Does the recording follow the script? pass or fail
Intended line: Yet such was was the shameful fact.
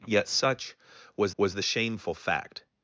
pass